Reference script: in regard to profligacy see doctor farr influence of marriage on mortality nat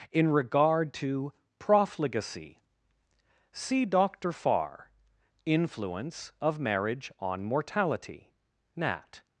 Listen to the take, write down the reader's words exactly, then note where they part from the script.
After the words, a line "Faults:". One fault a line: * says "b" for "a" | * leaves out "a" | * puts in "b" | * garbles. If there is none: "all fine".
in regard to profligacy see doctor farr influence of marriage on mortality nat
Faults:
all fine